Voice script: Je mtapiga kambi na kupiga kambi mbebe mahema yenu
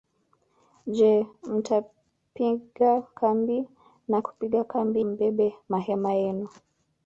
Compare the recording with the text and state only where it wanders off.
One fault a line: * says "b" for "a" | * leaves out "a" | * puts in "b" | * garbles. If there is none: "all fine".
all fine